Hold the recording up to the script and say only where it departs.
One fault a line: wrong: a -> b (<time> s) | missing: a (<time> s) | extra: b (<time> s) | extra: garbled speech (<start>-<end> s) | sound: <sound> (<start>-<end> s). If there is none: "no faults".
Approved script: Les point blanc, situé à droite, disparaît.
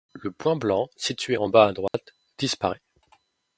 wrong: Les -> Le (0.1 s)
extra: en bas (1.4 s)
sound: dropout (1.9-1.9 s)